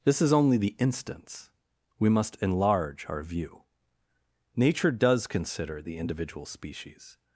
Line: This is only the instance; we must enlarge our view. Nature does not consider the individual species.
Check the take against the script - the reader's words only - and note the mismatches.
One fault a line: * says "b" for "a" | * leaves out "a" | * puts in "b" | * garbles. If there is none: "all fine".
* leaves out "not"